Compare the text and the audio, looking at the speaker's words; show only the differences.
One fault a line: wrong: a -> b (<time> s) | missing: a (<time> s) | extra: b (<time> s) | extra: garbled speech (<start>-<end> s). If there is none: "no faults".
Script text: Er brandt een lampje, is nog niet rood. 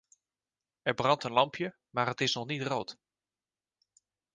extra: maar het (1.9 s)